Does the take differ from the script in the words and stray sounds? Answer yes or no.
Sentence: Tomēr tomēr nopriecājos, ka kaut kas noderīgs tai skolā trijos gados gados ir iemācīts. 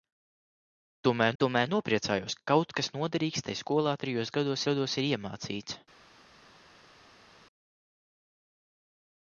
no